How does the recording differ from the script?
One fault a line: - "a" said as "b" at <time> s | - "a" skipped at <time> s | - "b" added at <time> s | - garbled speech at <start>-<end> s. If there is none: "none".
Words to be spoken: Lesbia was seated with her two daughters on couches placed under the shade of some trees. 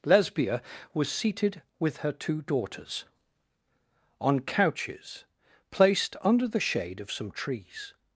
none